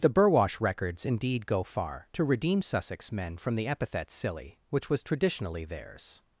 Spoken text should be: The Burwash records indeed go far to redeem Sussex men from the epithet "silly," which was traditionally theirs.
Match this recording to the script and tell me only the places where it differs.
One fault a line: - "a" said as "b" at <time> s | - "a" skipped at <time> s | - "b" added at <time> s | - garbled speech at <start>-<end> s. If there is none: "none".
none